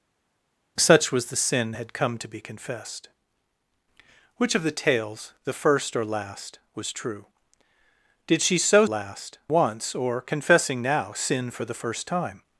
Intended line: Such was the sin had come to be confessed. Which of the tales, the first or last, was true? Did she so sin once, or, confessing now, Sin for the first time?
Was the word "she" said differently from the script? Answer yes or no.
no